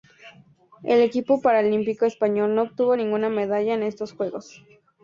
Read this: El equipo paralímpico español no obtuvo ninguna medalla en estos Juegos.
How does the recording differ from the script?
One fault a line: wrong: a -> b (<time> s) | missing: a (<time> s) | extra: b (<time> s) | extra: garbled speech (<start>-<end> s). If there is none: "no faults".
no faults